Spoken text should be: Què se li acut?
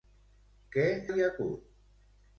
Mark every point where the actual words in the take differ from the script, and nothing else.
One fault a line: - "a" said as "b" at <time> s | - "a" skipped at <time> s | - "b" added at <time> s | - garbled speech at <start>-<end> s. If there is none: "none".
- "se" skipped at 0.8 s